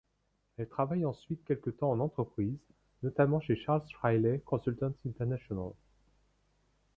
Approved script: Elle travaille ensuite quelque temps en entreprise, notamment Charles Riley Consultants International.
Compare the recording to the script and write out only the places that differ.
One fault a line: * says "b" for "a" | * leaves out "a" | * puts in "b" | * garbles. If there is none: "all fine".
* puts in "chez"